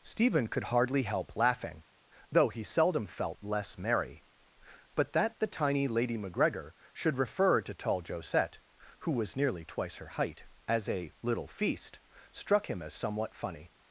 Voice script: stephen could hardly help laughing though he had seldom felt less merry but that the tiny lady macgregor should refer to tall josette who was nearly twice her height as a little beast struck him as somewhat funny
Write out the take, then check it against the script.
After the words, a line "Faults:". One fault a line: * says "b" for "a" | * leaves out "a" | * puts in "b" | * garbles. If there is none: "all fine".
stephen could hardly help laughing though he seldom felt less merry but that the tiny lady macgregor should refer to tall josette who was nearly twice her height as a little feast struck him as somewhat funny
Faults:
* leaves out "had"
* says "feast" for "beast"